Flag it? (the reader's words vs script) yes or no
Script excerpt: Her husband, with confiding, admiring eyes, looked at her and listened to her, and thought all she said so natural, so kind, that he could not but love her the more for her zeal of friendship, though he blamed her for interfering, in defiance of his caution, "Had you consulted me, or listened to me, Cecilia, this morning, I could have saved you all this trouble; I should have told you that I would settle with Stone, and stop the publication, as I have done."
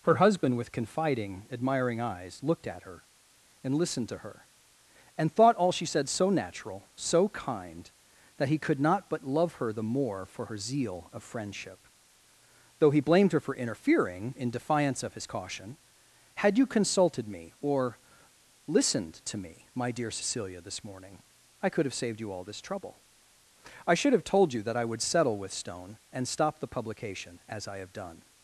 yes